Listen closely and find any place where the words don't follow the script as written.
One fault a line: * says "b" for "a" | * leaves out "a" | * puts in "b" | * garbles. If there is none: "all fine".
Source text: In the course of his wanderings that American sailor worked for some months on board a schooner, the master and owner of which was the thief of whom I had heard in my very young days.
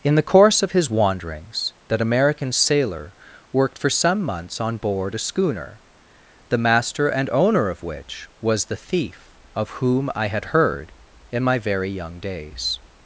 all fine